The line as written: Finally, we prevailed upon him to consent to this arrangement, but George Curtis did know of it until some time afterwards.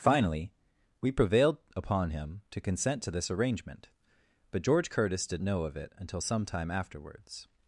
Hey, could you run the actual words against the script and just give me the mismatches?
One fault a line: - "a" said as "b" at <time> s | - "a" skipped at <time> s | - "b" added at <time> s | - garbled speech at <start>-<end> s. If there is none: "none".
none